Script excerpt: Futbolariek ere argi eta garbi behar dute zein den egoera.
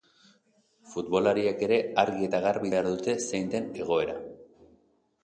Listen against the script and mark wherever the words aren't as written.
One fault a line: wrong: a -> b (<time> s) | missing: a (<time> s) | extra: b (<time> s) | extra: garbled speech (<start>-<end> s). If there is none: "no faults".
no faults